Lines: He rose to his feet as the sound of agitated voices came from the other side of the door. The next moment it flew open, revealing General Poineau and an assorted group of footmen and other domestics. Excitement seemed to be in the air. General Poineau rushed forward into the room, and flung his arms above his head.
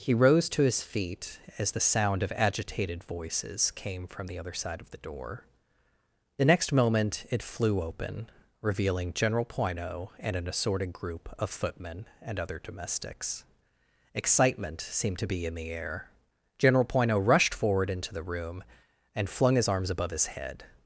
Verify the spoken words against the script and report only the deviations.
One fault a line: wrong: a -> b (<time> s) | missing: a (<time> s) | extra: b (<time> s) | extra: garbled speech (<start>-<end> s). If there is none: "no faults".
no faults